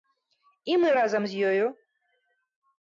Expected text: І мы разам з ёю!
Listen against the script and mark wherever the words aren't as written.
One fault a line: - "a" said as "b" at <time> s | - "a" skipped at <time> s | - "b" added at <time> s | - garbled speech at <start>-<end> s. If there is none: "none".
none